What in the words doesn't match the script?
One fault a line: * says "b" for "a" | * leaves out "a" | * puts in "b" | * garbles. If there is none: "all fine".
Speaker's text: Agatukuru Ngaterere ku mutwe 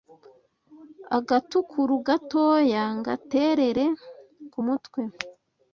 * puts in "gatoya"